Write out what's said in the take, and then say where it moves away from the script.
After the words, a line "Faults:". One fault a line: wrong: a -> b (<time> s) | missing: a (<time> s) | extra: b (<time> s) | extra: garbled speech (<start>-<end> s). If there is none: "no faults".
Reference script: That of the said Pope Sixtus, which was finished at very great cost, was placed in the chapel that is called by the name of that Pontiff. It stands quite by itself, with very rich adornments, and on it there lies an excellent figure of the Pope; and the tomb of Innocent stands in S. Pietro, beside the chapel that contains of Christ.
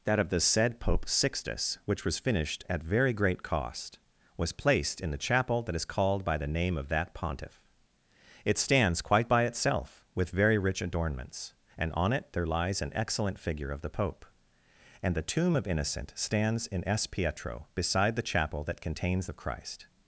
That of the said Pope Sixtus, which was finished at very great cost, was placed in the chapel that is called by the name of that Pontiff. It stands quite by itself, with very rich adornments, and on it there lies an excellent figure of the Pope; and the tomb of Innocent stands in S. Pietro, beside the chapel that contains of Christ.
Faults:
no faults